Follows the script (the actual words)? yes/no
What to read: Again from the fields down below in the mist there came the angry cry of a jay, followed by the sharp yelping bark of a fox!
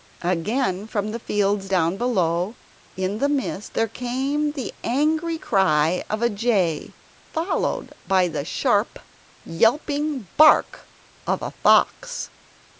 yes